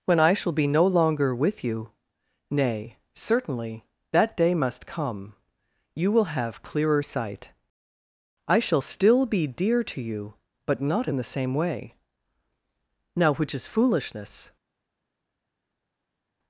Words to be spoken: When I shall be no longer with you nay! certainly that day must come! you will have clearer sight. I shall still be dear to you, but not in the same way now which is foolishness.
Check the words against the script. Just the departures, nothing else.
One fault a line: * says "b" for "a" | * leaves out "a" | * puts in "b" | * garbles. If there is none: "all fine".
all fine